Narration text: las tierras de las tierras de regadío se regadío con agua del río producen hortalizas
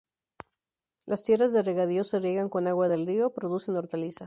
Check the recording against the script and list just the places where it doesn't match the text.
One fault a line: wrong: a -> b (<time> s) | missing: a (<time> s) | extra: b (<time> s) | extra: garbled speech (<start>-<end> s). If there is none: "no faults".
missing: las tierras de (1.6 s)
wrong: regadío -> riegan (2.2 s)